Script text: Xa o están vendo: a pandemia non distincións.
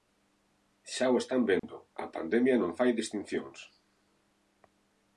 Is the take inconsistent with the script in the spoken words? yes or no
yes